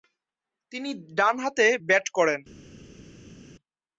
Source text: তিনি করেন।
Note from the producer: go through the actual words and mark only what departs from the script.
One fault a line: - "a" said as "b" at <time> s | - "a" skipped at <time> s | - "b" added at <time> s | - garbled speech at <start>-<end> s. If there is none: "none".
- "ডানহাতে ব্যাট" added at 1.2 s